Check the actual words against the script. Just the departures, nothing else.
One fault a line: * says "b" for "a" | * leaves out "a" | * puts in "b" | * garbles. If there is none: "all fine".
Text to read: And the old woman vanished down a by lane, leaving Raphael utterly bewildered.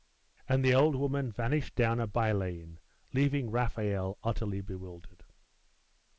all fine